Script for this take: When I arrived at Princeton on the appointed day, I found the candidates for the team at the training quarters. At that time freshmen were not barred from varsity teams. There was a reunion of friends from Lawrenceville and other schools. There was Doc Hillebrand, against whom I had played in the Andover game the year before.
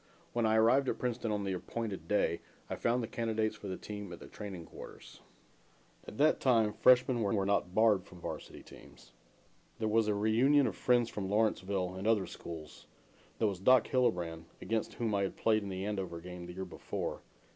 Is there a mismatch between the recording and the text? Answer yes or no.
yes